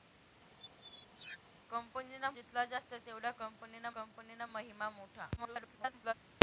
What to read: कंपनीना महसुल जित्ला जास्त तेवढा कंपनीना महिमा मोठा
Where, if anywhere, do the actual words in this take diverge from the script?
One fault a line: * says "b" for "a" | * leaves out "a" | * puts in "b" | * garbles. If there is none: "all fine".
* leaves out "महसुल"
* puts in "कंपनीना"
* garbles